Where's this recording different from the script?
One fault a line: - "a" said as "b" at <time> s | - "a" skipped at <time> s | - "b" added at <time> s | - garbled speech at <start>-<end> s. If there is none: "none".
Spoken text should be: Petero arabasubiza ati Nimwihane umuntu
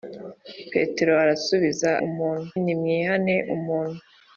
- "ati" said as "umuntu" at 2.1 s